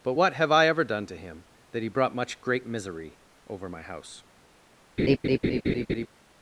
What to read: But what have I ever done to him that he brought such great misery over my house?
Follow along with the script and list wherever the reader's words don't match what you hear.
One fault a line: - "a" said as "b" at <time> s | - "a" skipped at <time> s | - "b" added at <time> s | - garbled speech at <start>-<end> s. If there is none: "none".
- "such" said as "much" at 2.1 s